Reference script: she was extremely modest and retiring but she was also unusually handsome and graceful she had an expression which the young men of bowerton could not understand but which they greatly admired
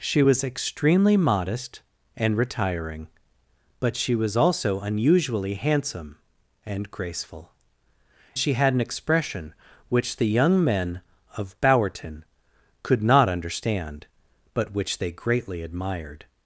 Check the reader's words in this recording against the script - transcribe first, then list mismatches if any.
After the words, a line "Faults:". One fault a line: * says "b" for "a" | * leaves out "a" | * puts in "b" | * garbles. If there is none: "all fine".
she was extremely modest and retiring but she was also unusually handsome and graceful she had an expression which the young men of bowerton could not understand but which they greatly admired
Faults:
all fine